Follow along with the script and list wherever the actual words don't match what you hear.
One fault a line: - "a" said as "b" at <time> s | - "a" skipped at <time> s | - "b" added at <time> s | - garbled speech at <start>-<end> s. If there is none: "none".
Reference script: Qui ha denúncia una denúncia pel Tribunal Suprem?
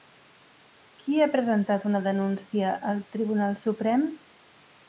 - "denúncia" said as "presentat" at 1.4 s
- "pel" said as "al" at 2.9 s